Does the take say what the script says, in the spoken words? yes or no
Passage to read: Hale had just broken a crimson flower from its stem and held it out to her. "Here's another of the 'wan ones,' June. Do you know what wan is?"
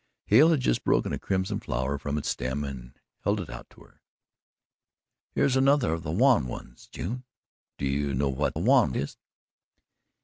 yes